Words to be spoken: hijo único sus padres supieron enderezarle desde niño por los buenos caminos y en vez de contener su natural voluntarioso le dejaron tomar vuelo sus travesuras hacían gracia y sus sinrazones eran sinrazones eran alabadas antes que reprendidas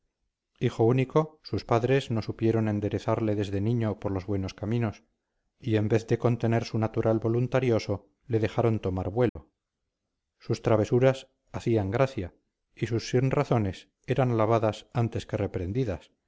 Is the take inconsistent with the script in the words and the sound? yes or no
yes